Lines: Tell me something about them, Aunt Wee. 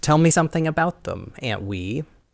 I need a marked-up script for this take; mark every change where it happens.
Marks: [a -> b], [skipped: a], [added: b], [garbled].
Tell me something about them, Aunt Wee.